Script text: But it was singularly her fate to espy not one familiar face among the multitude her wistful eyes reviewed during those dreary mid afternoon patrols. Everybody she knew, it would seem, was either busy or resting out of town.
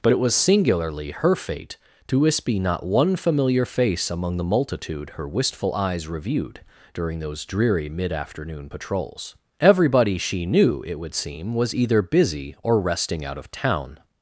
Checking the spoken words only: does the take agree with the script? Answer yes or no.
yes